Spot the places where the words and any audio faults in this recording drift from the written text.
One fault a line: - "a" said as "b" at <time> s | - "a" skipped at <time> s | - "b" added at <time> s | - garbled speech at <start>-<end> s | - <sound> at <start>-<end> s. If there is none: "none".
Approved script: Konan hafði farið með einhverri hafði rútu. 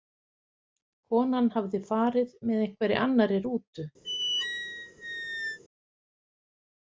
- "hafði" said as "annarri" at 3.1 s
- squeak at 4.0-5.6 s